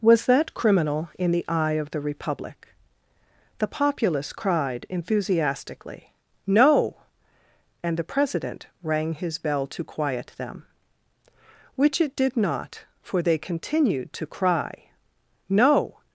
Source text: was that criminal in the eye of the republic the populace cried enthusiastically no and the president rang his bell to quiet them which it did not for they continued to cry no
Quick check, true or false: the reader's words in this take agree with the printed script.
true